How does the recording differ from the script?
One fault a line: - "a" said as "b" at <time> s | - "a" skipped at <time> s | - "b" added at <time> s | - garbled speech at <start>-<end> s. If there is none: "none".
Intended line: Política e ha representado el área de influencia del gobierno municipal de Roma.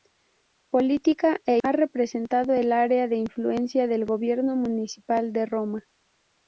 none